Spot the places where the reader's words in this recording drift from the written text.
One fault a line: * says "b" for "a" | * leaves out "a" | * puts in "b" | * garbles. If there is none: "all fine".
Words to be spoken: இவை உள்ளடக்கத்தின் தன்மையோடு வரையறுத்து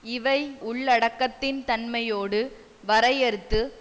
all fine